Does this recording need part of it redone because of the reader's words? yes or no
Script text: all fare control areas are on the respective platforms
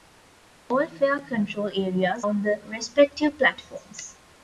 yes